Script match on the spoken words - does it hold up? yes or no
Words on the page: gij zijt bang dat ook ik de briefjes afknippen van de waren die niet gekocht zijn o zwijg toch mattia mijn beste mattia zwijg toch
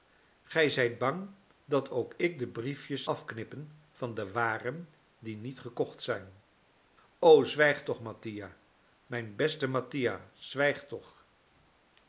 yes